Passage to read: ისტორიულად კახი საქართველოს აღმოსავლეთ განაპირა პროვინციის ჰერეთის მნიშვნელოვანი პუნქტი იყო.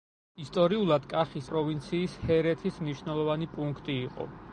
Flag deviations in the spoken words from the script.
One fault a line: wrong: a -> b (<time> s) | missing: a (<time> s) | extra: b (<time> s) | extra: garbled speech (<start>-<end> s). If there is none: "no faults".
missing: საქართველოს აღმოსავლეთ განაპირა (1.4 s)